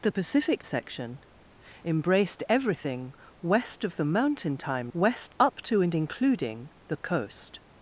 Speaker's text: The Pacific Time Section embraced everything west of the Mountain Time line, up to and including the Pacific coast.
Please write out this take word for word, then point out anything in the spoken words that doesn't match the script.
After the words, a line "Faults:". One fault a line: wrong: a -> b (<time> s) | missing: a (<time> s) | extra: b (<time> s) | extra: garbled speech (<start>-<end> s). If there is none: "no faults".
The Pacific Section embraced everything west of the Mountain Time west, up to and including the Coast.
Faults:
missing: Time (0.6 s)
wrong: line -> west (4.9 s)
missing: Pacific (7.0 s)